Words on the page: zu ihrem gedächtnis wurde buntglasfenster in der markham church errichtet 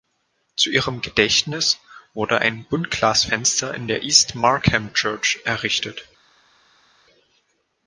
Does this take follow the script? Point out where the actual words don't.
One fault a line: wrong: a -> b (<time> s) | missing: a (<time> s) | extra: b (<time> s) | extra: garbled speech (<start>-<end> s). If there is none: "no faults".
extra: ein (2.4 s)
extra: east (4.0 s)